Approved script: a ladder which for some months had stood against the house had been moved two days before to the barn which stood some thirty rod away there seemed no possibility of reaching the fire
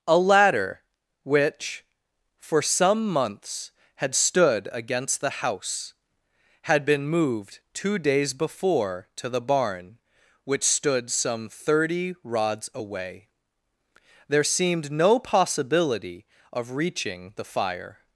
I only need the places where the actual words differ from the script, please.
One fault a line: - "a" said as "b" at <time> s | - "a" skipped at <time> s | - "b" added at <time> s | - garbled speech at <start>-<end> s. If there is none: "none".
- "rod" said as "rods" at 12.2 s